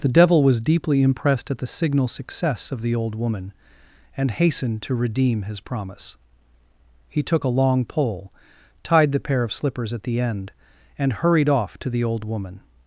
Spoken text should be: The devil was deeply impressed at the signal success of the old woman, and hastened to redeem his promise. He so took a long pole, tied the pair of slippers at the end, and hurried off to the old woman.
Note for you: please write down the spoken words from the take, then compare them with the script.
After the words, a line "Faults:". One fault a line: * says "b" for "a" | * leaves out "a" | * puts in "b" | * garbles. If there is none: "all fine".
The devil was deeply impressed at the signal success of the old woman, and hastened to redeem his promise. He took a long pole, tied the pair of slippers at the end, and hurried off to the old woman.
Faults:
* leaves out "so"